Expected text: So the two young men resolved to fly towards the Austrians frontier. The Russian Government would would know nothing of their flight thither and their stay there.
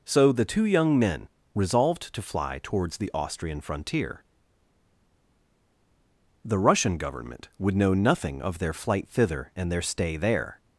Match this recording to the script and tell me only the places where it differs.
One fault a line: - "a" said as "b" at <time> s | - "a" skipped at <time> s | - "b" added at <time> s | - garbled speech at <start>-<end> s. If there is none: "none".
- "Austrians" said as "Austrian" at 3.1 s
- "would" skipped at 7.8 s